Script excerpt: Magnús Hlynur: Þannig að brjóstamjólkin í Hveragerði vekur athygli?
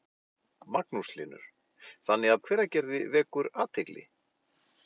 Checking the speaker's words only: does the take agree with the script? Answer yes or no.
no